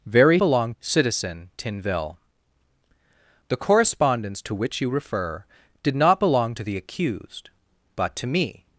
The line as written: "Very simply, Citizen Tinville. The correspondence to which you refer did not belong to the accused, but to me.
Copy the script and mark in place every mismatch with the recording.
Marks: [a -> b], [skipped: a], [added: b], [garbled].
"Very [simply, -> belong] Citizen Tinville. The correspondence to which you refer did not belong to the accused, but to me.